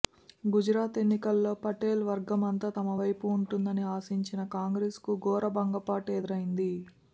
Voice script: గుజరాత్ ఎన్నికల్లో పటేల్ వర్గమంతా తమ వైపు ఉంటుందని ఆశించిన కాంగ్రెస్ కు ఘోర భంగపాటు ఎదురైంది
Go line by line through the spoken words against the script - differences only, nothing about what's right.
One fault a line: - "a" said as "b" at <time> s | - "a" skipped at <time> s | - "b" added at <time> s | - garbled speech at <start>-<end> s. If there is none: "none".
none